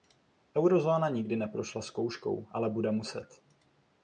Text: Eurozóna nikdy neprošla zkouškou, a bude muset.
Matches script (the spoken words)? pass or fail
fail